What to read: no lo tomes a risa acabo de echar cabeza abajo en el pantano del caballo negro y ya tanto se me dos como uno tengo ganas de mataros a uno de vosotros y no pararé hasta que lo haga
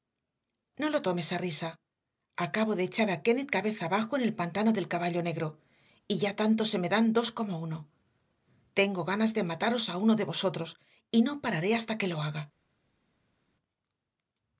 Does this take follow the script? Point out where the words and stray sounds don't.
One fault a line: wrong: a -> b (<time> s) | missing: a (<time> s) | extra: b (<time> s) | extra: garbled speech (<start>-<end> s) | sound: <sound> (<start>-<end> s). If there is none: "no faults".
extra: a kennett (3.1 s)
extra: dan (6.9 s)